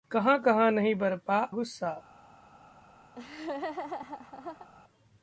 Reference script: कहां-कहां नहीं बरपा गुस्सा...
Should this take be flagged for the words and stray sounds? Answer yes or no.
yes